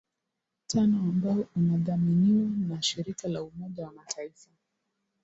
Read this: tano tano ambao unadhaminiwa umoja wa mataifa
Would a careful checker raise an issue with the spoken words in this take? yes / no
yes